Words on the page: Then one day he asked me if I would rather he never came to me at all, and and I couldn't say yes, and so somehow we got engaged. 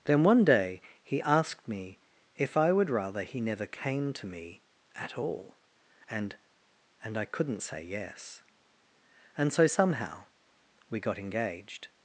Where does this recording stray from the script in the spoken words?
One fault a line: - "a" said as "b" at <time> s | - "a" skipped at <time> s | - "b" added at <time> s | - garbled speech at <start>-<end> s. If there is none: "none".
none